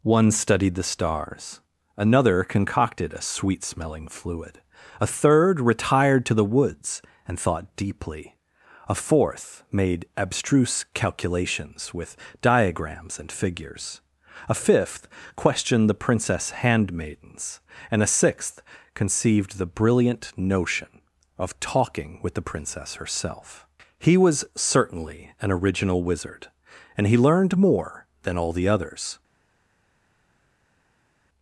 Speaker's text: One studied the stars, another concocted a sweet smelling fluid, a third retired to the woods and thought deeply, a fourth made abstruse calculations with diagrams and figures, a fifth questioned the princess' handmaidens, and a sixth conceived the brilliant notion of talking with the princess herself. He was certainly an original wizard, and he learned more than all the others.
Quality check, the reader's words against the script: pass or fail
pass